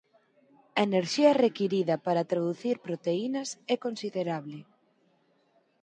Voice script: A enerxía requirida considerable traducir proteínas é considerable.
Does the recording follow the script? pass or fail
fail